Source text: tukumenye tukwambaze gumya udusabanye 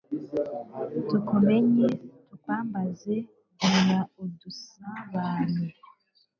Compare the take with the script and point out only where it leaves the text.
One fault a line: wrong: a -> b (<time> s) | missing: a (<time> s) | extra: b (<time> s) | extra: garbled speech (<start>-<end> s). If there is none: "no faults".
no faults